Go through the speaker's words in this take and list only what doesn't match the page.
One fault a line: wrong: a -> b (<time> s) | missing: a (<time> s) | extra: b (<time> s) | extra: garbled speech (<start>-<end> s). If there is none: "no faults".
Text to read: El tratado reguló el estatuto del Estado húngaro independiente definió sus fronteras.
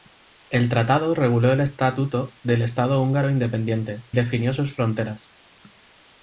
no faults